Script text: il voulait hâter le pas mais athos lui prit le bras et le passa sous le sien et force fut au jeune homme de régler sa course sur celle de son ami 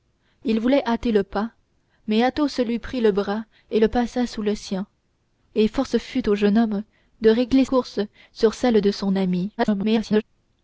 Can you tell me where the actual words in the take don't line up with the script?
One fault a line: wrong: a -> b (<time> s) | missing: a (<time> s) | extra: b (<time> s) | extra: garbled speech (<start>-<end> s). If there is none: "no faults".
missing: sa (7.7 s)
extra: garbled speech (9.6-10.2 s)